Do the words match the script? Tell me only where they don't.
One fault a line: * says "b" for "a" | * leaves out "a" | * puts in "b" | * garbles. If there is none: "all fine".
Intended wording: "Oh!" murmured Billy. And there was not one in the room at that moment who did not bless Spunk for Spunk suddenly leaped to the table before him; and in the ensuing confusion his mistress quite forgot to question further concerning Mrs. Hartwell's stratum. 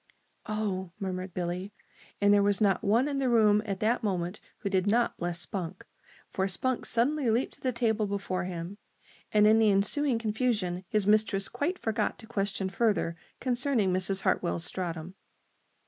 all fine